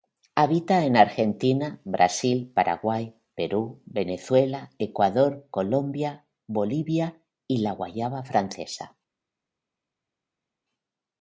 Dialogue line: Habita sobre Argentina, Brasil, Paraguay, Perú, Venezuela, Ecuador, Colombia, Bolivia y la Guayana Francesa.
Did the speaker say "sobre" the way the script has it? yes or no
no